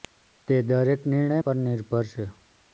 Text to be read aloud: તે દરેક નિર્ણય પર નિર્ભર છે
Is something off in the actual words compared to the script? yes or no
no